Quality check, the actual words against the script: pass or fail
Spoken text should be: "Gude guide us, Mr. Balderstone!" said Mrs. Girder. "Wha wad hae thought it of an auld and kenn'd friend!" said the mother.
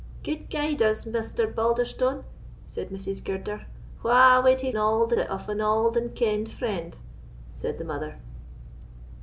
fail